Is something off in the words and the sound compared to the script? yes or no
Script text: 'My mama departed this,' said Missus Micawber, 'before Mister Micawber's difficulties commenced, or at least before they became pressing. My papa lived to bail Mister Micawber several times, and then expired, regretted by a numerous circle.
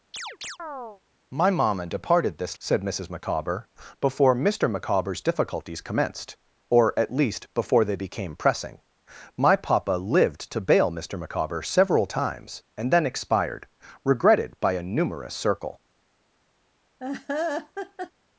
yes